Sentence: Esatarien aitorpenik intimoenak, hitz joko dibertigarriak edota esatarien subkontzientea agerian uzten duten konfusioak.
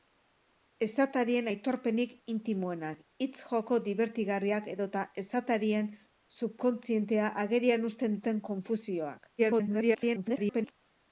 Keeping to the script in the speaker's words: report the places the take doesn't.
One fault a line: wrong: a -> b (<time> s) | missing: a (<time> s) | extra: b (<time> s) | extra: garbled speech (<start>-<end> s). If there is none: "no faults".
extra: garbled speech (9.4-10.7 s)